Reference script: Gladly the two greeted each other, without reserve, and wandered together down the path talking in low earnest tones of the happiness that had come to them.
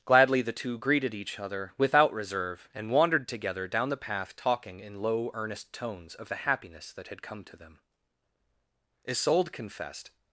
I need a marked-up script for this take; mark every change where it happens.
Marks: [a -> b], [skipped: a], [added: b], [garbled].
Gladly the two greeted each other, without reserve, and wandered together down the path talking in low earnest tones of the happiness that had come to them. [added: Isolde confessed]